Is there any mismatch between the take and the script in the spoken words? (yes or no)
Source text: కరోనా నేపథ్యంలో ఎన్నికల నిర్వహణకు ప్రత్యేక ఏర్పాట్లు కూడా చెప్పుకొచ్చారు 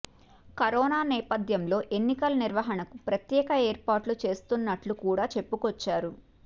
yes